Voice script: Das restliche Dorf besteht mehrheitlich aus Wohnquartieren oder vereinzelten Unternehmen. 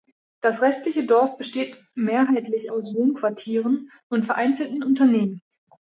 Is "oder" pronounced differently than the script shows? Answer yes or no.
yes